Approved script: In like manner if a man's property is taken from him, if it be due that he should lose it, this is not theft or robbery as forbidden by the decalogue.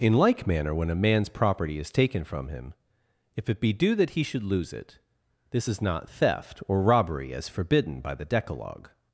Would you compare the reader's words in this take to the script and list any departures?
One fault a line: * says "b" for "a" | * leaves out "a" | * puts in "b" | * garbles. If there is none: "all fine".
* says "when" for "if"